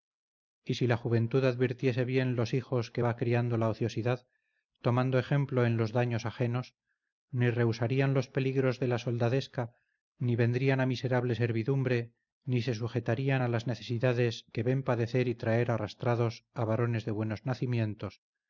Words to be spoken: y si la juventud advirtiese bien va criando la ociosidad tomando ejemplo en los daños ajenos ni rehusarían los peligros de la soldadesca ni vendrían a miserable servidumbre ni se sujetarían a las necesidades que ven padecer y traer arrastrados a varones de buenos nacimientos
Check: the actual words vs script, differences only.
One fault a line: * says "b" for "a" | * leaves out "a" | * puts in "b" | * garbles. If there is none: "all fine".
* puts in "los hijos que"